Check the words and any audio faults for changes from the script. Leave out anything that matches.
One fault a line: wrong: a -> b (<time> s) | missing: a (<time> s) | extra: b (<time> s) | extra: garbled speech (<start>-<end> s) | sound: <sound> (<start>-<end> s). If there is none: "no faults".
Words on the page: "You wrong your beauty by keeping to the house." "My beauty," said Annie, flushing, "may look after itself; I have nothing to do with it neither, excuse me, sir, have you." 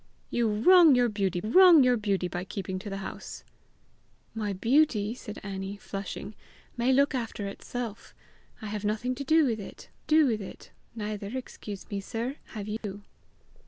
extra: wrong your beauty (1.4 s)
extra: do with it (10.1 s)
sound: dropout (12.8-12.8 s)